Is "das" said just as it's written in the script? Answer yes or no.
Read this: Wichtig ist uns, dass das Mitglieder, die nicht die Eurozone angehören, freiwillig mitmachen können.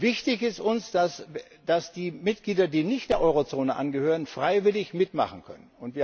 no